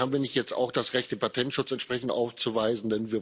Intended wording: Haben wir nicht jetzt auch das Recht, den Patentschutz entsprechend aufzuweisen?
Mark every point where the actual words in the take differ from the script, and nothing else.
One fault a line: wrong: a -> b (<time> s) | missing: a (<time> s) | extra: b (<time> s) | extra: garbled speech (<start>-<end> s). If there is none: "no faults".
no faults